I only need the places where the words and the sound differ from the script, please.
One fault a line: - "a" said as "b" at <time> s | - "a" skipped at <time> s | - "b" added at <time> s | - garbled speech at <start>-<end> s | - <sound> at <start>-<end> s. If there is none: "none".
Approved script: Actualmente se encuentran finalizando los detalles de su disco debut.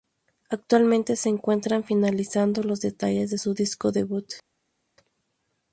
none